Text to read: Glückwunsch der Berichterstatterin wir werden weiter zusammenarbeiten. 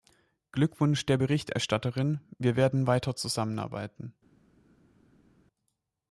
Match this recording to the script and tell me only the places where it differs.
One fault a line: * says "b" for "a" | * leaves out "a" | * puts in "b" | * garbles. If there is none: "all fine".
all fine